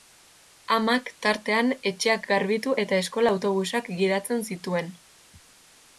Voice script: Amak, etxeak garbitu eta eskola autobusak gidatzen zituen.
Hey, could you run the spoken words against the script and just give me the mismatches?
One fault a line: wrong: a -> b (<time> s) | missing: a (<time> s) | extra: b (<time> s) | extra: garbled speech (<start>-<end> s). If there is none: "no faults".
extra: tartean (1.2 s)